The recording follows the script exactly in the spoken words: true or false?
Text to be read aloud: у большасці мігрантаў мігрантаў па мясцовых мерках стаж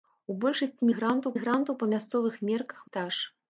true